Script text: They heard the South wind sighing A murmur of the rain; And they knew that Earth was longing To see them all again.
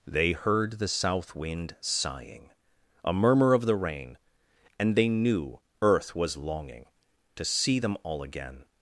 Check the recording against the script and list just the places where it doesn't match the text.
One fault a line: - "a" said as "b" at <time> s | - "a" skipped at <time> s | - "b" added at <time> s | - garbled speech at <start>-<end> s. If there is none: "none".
- "that" skipped at 5.6 s